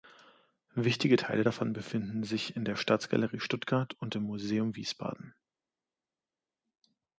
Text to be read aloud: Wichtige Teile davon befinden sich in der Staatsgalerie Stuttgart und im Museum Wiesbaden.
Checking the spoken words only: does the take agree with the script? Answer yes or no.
yes